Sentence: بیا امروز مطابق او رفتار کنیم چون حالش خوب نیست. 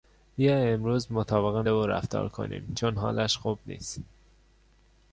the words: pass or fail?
pass